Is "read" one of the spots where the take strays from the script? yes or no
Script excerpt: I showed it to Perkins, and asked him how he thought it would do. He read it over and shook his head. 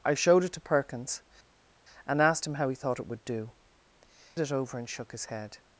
yes